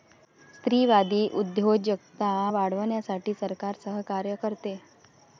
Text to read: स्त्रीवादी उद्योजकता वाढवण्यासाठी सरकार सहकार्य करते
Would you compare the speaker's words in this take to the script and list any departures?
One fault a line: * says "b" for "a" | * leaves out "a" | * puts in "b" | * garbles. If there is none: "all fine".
all fine